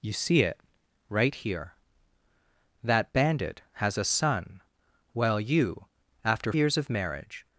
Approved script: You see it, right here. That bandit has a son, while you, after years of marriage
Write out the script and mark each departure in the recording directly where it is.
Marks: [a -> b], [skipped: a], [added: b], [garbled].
You see it, right here. That bandit has a son, while you, after years of marriage